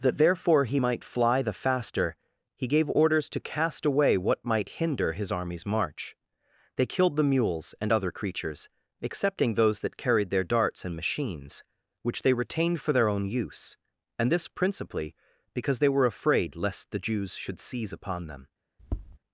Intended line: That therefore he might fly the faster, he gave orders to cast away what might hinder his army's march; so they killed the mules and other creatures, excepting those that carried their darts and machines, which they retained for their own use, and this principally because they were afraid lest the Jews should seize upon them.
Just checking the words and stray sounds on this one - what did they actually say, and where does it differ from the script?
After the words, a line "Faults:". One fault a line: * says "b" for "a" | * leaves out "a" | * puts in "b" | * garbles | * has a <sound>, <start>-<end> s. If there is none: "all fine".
That therefore he might fly the faster, he gave orders to cast away what might hinder his army's march; they killed the mules and other creatures, excepting those that carried their darts and machines, which they retained for their own use, and this principally because they were afraid lest the Jews should seize upon them.
Faults:
* leaves out "so"
* has a tap, 18.8-19.2 s